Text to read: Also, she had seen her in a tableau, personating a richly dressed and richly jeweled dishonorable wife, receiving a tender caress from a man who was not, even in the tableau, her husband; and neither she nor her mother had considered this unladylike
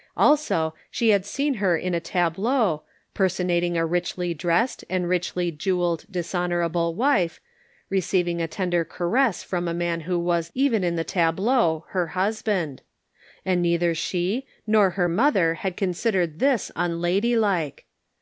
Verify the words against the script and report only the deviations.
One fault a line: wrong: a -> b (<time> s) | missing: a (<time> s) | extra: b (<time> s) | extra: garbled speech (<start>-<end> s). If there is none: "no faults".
missing: not (10.5 s)